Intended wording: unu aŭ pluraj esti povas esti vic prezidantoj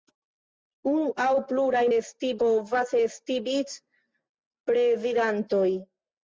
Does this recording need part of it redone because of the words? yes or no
no